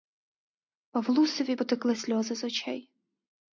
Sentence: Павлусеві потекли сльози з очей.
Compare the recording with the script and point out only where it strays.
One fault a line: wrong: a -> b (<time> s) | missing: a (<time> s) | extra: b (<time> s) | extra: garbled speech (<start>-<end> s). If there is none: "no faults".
no faults